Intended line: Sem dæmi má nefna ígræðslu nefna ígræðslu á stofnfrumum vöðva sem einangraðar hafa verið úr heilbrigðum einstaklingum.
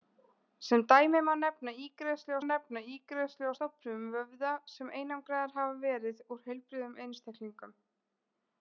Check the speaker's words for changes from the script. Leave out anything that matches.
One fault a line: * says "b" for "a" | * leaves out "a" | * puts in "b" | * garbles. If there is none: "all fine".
all fine